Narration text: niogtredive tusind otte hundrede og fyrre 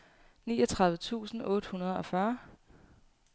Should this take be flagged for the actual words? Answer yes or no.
no